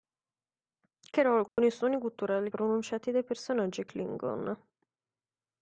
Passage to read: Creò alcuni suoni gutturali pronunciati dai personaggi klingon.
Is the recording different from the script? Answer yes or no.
no